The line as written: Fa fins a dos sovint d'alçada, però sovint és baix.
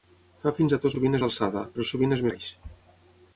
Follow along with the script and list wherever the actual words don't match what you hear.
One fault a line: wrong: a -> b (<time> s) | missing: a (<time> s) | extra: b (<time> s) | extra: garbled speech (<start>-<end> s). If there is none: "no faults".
no faults